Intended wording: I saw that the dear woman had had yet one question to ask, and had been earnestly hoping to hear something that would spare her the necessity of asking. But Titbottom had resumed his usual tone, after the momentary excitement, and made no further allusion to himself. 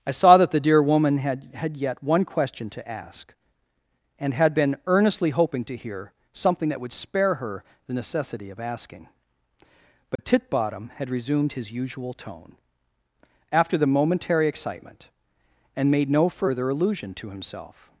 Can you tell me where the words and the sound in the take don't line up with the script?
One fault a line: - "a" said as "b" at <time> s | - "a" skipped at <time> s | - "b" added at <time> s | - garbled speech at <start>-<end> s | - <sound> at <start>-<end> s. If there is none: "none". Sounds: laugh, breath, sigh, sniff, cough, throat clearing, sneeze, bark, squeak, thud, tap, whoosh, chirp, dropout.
- dropout at 10.2-10.2 s